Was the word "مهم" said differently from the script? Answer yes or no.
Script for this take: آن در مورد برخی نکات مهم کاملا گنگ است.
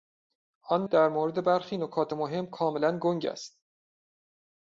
no